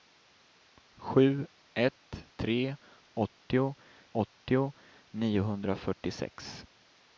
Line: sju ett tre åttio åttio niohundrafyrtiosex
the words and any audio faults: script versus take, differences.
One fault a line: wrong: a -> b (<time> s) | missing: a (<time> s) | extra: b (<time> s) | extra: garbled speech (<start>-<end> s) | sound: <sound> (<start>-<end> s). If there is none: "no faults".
no faults